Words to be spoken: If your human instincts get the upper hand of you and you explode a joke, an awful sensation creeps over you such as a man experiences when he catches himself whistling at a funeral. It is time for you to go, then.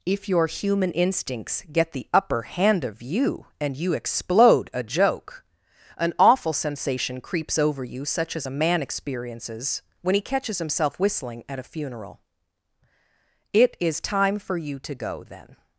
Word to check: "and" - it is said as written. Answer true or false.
true